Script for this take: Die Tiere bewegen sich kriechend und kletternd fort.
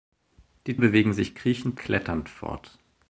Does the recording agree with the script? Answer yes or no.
no